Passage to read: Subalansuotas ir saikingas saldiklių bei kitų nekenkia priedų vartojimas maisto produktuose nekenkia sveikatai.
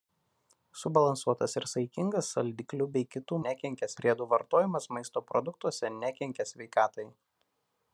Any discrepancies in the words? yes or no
no